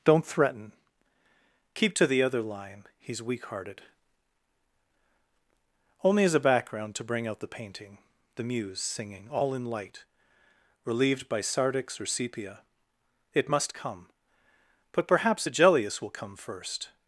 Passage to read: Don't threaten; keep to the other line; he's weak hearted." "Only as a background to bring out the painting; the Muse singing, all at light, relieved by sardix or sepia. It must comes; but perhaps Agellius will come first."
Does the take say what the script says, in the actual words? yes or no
no